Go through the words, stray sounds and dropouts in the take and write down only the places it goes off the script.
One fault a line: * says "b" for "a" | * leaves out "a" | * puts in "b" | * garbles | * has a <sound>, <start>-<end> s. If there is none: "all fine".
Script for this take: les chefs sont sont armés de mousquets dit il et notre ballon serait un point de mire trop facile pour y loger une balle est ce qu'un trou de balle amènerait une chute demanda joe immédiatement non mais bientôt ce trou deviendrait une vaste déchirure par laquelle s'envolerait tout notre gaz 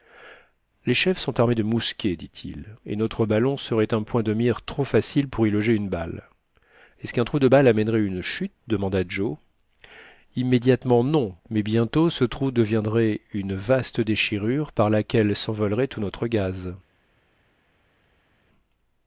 * leaves out "sont"